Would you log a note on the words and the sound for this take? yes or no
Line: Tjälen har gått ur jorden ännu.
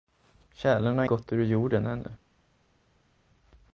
no